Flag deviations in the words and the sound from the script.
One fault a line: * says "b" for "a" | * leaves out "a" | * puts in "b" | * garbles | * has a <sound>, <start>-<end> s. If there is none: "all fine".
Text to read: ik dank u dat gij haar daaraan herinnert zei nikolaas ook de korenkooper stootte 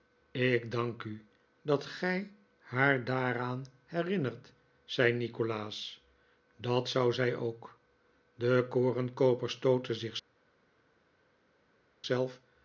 * puts in "dat zou zij"